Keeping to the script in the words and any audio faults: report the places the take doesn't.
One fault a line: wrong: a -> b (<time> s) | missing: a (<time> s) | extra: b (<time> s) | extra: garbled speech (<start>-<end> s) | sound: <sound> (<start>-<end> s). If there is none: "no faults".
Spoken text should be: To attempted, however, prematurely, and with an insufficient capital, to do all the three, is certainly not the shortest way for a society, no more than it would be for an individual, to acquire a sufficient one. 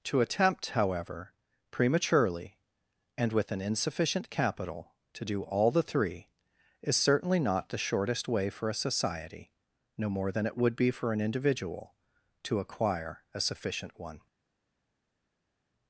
wrong: attempted -> attempt (0.2 s)